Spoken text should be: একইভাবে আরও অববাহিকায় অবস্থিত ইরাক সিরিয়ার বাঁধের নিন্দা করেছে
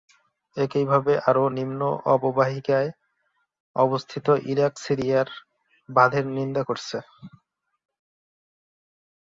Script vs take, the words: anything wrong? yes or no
yes